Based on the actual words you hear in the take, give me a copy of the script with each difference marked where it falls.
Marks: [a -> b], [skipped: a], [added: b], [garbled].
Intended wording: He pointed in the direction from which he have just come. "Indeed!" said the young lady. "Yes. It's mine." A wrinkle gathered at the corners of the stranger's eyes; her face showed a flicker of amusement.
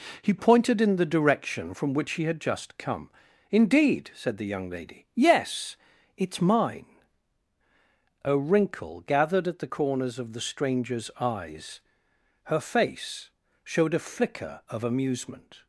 He pointed in the direction from which he [have -> had] just come. "Indeed!" said the young lady. "Yes. It's mine." A wrinkle gathered at the corners of the stranger's eyes; her face showed a flicker of amusement.